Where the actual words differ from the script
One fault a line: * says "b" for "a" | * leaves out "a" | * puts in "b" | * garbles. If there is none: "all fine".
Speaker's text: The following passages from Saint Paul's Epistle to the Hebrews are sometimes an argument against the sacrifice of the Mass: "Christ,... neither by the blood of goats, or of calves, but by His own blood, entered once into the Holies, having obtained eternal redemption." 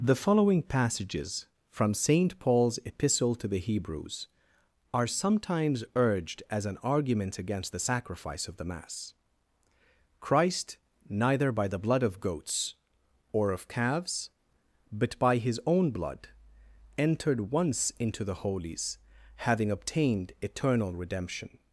* puts in "urged as"